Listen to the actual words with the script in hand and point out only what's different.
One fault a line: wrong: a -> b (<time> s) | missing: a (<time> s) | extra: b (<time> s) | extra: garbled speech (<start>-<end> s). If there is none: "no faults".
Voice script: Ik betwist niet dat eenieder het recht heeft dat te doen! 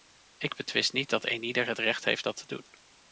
no faults